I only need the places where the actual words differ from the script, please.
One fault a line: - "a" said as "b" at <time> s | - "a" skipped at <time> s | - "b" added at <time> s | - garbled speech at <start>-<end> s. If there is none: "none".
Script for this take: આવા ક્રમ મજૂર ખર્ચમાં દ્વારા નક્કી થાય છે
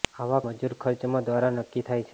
- "ક્રમ" skipped at 0.4 s